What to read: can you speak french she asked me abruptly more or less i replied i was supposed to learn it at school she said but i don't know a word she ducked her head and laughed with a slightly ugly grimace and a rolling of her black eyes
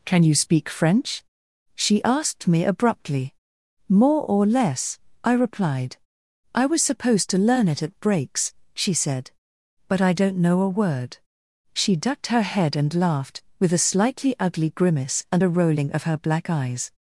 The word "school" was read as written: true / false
false